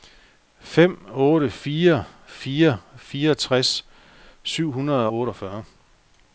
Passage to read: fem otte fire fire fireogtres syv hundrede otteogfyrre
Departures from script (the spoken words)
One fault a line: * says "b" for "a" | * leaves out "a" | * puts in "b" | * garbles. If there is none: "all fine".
all fine